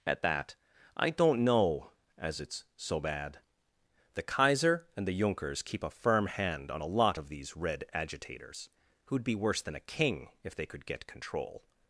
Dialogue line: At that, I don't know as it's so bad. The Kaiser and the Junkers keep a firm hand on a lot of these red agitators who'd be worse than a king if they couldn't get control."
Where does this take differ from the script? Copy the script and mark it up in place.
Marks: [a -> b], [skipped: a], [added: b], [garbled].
At that, I don't know as it's so bad. The Kaiser and the Junkers keep a firm hand on a lot of these red agitators who'd be worse than a king if they [couldn't -> could] get control."